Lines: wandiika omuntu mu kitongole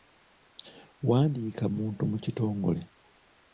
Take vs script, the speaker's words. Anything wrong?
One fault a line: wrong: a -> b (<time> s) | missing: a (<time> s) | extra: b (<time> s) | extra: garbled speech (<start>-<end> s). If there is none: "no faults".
no faults